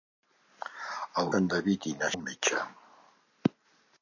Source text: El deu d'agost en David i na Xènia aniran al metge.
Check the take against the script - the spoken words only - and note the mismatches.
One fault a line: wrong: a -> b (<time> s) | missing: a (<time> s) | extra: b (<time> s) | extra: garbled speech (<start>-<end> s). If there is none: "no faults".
missing: deu d'agost (1.3 s)
missing: Xènia aniran (2.1 s)